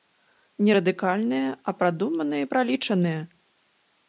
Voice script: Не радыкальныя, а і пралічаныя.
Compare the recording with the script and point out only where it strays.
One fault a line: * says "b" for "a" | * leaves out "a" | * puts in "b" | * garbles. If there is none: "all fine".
* puts in "прадуманыя"